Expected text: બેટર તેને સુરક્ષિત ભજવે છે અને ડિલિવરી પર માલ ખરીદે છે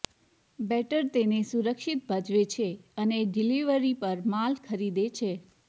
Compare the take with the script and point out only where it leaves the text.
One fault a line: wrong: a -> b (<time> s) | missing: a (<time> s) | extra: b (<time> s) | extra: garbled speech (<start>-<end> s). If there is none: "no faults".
no faults